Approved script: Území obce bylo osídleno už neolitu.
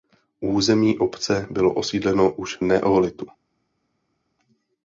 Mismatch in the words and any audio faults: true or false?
false